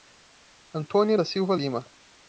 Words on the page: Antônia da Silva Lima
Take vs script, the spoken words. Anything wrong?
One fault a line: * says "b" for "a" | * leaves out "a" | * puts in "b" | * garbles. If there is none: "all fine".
all fine